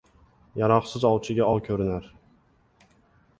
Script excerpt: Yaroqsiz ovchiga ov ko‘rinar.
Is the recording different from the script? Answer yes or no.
no